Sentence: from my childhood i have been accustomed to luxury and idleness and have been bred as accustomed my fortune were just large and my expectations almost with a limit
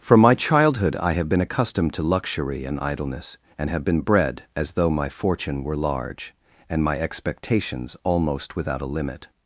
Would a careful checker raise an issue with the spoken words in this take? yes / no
yes